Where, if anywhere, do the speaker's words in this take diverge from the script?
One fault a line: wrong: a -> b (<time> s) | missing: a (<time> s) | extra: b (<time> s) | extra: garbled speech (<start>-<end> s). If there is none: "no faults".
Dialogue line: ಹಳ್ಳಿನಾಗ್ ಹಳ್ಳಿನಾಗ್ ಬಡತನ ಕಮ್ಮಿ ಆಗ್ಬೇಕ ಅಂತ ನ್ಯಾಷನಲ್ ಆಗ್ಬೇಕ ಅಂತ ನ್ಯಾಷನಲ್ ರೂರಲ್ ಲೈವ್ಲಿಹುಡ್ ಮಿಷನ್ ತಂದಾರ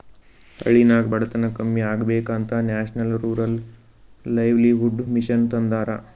missing: ಹಳ್ಳಿನಾಗ್ (1.1 s)
missing: ಆಗ್ಬೇಕ ಅಂತ ನ್ಯಾಷನಲ್ (3.2 s)